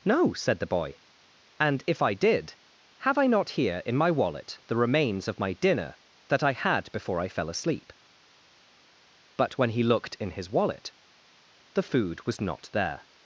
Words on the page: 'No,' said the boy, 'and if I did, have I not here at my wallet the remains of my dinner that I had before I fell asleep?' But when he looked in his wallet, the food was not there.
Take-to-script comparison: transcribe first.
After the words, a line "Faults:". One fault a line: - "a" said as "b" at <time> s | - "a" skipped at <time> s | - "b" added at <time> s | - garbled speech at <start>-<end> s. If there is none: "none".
'No,' said the boy, 'and if I did, have I not here in my wallet the remains of my dinner that I had before I fell asleep?' But when he looked in his wallet, the food was not there.
Faults:
- "at" said as "in" at 3.9 s